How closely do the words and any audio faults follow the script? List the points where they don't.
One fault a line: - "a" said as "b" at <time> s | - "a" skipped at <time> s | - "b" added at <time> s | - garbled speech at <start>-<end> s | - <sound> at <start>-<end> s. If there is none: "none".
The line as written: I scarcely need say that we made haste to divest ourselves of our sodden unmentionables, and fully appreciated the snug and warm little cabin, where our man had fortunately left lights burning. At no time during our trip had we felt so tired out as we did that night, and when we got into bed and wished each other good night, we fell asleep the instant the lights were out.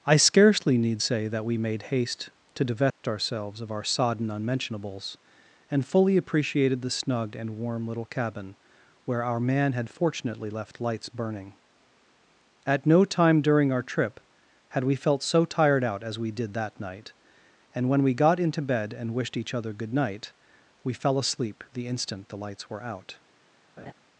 - dropout at 2.9-3.0 s
- laugh at 23.8-23.9 s